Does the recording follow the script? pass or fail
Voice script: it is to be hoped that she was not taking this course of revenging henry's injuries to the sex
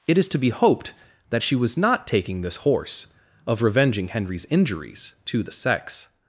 fail